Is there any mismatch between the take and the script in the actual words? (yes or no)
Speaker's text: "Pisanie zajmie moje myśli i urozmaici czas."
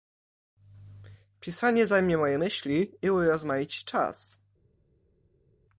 no